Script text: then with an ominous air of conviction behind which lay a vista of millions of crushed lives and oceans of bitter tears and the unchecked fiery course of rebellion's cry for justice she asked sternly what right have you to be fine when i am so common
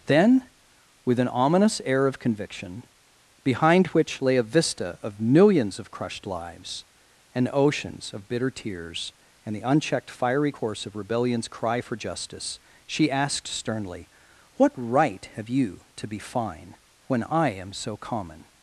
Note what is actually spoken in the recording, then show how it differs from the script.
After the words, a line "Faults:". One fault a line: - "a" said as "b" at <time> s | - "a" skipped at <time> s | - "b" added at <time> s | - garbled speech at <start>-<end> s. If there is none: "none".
then with an ominous air of conviction behind which lay a vista of millions of crushed lives and oceans of bitter tears and the unchecked fiery course of rebellion's cry for justice she asked sternly what right have you to be fine when i am so common
Faults:
none